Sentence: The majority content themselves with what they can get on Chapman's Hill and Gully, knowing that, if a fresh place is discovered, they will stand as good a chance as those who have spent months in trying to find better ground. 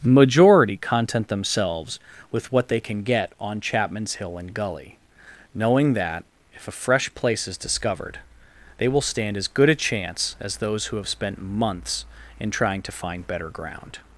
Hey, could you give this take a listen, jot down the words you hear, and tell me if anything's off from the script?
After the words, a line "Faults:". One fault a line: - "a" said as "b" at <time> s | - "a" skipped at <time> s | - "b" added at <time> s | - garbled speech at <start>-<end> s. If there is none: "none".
majority content themselves with what they can get on Chapman's Hill and Gully, knowing that, if a fresh place is discovered, they will stand as good a chance as those who have spent months in trying to find better ground.
Faults:
- "The" skipped at 0.0 s